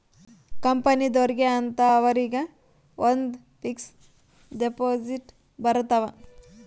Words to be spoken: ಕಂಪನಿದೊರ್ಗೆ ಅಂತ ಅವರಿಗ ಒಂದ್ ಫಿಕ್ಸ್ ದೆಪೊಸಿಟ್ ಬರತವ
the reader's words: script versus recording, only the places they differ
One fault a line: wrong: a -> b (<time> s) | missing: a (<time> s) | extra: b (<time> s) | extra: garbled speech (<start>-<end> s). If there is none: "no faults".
no faults